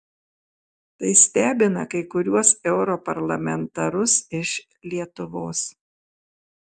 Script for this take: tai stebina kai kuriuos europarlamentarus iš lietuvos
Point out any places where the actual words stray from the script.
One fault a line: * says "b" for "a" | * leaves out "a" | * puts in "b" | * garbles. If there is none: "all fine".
all fine